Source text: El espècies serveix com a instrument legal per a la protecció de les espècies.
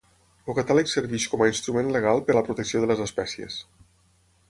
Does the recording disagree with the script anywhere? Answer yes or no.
yes